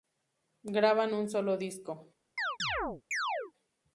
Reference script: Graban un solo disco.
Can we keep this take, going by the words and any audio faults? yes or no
no